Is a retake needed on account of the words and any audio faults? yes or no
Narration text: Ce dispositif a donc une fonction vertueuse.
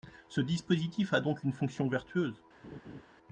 yes